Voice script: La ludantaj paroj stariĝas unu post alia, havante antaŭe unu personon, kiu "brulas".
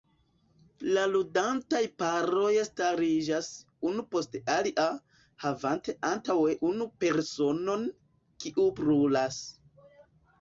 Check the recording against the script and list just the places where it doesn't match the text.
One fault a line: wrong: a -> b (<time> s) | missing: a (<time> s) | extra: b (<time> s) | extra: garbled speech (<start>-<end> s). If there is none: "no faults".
no faults